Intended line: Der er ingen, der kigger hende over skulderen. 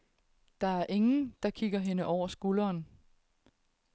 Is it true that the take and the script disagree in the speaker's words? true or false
false